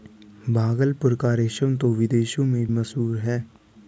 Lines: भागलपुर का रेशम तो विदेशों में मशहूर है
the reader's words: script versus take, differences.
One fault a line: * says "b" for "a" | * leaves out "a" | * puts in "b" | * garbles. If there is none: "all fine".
all fine